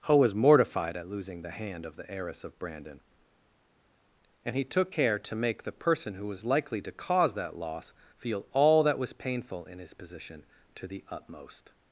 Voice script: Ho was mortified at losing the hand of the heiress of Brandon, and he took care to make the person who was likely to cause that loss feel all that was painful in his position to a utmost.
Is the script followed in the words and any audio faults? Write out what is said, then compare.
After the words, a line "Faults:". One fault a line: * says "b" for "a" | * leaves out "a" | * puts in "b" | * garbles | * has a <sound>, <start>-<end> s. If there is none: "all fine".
Ho was mortified at losing the hand of the heiress of Brandon, and he took care to make the person who was likely to cause that loss feel all that was painful in his position to the utmost.
Faults:
* says "the" for "a"